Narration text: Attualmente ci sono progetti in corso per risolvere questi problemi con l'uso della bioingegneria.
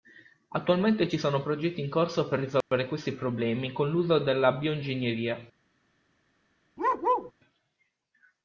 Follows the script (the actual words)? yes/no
yes